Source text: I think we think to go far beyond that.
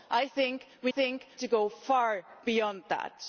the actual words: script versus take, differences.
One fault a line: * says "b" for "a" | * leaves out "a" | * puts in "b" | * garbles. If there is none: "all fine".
all fine